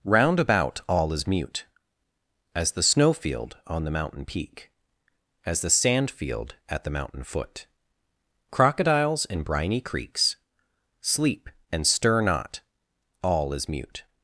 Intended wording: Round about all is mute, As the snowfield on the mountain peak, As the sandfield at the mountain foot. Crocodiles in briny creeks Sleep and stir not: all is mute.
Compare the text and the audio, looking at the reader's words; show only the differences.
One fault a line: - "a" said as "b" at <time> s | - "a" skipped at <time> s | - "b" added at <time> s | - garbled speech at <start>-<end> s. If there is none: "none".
none